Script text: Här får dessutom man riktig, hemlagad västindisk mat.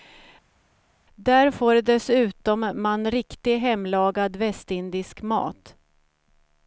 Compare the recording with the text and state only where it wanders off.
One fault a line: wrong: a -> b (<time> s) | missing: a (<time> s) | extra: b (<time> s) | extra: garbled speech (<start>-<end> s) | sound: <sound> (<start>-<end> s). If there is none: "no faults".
wrong: Här -> Där (1.2 s)